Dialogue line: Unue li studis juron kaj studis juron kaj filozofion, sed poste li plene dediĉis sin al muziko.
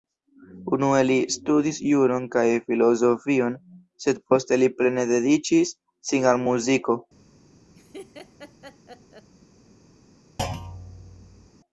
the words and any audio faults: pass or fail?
fail